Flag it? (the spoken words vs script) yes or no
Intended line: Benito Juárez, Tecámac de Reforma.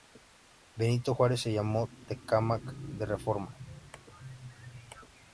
yes